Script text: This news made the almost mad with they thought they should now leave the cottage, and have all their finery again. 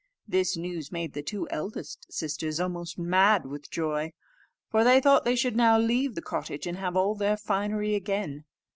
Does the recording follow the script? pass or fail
fail